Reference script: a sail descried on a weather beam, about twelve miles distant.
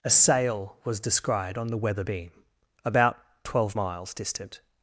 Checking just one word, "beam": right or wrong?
right